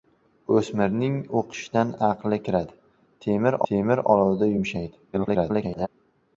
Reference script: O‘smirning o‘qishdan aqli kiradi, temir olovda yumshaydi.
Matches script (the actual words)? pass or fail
fail